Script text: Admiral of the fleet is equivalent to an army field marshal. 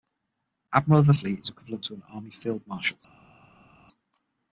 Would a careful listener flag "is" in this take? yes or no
no